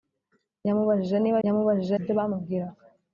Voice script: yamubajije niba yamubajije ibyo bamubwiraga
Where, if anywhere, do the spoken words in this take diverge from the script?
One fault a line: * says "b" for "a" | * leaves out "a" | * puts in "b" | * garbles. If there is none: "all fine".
all fine